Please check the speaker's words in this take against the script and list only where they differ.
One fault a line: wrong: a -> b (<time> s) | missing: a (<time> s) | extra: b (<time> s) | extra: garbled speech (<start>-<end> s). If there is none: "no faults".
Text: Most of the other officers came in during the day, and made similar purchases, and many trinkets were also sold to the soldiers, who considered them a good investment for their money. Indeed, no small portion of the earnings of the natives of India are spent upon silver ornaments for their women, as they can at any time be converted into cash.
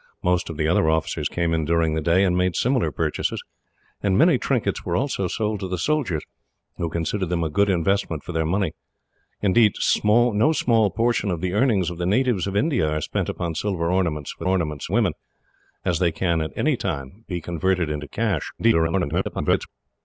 wrong: their -> ornaments (14.5 s)
extra: garbled speech (18.6-19.7 s)